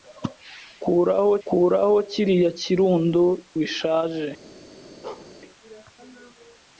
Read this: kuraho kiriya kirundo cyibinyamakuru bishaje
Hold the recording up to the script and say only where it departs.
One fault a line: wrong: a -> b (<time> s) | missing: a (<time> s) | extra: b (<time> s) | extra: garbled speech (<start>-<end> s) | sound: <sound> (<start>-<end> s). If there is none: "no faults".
extra: kuraho (1.5 s)
missing: cyibinyamakuru (3.2 s)
sound: bark (5.0-5.3 s)